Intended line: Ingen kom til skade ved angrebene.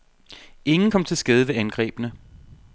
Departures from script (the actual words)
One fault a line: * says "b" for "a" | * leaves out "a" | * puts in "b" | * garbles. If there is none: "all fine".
all fine